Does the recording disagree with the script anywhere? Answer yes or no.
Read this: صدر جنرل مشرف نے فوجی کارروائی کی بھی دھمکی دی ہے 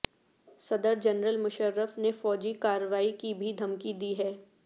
no